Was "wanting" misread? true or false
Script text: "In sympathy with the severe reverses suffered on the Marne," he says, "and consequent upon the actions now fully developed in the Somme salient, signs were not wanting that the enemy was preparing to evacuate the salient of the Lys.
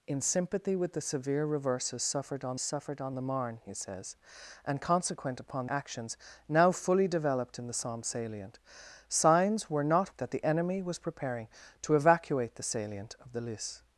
true